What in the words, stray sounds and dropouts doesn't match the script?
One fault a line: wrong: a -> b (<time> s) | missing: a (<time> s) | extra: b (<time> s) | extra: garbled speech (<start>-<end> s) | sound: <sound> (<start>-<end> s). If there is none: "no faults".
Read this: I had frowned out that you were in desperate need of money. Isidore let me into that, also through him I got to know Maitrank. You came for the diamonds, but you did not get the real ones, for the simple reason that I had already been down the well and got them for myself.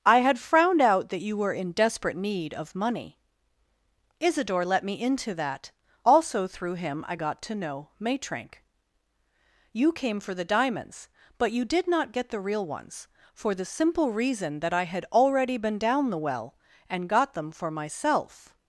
no faults